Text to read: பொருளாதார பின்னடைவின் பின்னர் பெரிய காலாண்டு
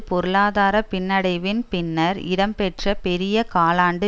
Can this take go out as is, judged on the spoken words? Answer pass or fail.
fail